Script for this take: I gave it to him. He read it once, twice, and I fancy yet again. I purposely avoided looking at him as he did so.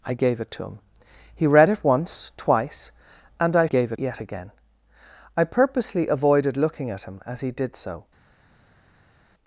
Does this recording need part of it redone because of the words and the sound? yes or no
yes